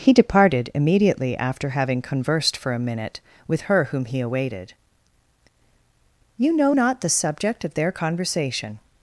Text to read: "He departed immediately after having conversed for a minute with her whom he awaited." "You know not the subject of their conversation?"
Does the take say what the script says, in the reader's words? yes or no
yes